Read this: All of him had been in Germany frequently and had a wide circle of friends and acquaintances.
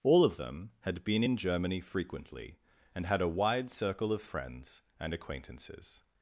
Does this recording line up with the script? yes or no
no